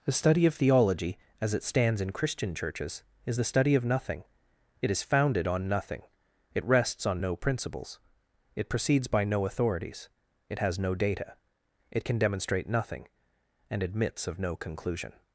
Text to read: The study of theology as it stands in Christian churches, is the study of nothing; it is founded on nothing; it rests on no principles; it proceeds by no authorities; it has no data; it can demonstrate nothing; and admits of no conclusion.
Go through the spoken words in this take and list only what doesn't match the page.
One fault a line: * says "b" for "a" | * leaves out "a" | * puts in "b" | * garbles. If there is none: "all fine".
all fine